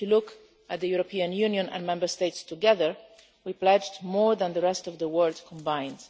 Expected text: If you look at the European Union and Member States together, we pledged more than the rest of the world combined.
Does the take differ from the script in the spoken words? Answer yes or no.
no